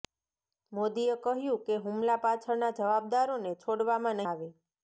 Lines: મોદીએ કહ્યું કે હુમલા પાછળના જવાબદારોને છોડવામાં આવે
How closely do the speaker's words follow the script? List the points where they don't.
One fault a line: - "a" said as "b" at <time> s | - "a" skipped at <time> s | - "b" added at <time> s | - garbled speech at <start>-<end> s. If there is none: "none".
none